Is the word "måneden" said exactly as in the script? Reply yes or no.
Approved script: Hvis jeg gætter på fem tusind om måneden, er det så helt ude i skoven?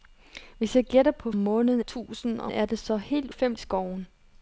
no